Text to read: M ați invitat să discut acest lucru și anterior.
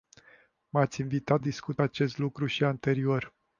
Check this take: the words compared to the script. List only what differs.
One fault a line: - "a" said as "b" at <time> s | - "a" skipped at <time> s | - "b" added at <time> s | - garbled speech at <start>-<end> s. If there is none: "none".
- "să" skipped at 1.4 s